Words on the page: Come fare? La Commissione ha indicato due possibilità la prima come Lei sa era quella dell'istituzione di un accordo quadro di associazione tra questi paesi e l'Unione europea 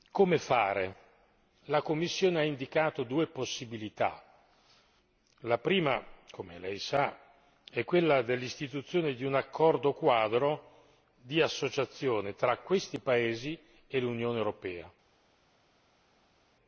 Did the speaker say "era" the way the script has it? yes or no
no